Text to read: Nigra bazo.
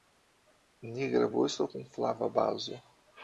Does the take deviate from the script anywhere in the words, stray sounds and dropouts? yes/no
yes